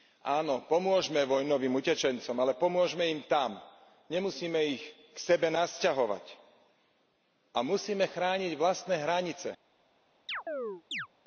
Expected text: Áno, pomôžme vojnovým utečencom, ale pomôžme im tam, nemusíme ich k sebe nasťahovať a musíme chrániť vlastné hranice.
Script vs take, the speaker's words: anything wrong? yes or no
no